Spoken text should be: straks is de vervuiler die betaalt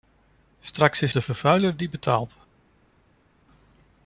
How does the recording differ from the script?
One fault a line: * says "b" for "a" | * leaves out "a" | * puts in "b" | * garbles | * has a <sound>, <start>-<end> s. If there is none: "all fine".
all fine